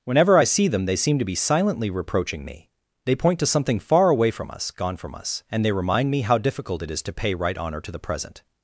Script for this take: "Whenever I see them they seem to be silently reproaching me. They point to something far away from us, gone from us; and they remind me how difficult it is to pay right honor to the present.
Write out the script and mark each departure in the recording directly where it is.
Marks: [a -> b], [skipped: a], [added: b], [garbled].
"Whenever I see them they seem to be silently reproaching me. They point to something far away from us, gone from us; and they remind me how difficult it is to pay right honor to the present.